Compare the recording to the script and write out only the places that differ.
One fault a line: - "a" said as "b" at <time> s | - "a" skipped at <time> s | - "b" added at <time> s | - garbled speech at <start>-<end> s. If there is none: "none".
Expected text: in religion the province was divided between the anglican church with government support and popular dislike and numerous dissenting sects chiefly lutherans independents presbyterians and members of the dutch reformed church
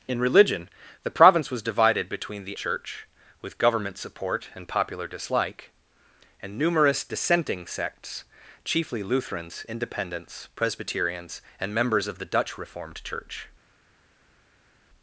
- "anglican" skipped at 2.6 s